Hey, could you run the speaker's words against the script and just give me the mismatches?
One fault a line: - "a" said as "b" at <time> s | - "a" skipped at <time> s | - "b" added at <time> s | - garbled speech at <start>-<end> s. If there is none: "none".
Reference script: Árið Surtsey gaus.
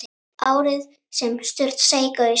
- "sem" added at 1.1 s